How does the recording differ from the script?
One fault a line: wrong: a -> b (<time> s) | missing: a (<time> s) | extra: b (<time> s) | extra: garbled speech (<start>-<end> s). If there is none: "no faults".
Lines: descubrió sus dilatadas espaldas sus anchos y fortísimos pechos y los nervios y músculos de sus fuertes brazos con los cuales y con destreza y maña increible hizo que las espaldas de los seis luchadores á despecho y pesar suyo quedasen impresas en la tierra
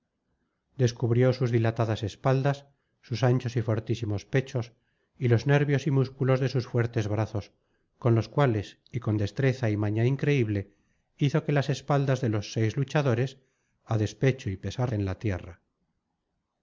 missing: suyo quedasen impresas (14.9 s)